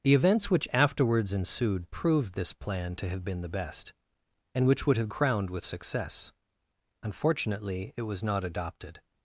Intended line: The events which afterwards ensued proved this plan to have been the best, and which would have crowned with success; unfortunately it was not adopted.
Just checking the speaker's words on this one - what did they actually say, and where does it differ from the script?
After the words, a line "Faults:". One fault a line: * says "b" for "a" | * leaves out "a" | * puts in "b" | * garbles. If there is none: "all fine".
The events which afterwards ensued proved this plan to have been the best, and which would have crowned with success; unfortunately it was not adopted.
Faults:
all fine